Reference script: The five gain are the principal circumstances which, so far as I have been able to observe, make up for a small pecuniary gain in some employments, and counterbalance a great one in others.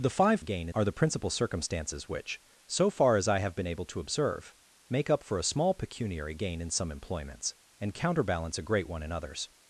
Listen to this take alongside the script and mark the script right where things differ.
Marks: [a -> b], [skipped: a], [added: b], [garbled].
The five gain are the principal circumstances which, so far as I have been able to observe, make up for a small pecuniary gain in some employments, and counterbalance a great one in others.